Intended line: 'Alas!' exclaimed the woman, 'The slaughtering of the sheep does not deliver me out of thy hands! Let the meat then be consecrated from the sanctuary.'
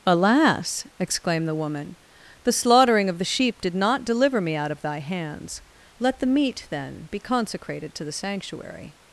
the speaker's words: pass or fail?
fail